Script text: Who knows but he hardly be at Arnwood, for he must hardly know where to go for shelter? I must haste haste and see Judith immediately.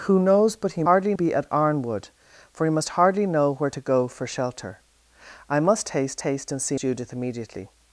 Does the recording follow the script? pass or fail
pass